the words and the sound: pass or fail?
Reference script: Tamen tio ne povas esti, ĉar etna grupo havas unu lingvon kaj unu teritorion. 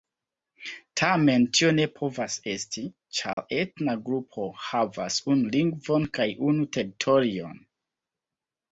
fail